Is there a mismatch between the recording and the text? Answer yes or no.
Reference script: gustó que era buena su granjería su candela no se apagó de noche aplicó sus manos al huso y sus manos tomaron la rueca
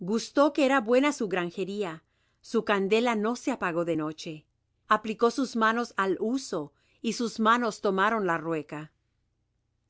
no